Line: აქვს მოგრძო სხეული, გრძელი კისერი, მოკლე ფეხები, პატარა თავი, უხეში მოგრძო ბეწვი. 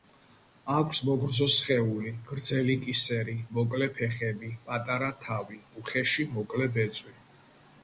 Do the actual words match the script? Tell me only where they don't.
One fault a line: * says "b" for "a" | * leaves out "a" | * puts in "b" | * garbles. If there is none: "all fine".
* says "მოკლე" for "მოგრძო"